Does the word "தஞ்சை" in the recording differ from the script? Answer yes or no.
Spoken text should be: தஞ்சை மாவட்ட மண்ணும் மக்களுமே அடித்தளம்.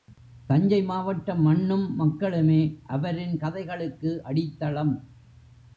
no